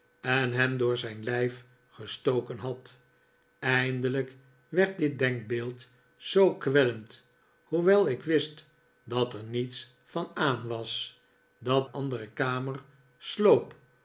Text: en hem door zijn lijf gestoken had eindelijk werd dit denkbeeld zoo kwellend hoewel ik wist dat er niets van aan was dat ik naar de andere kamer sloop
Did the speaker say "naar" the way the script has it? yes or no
no